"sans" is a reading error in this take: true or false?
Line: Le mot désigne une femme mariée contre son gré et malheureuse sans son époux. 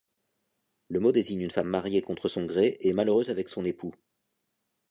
true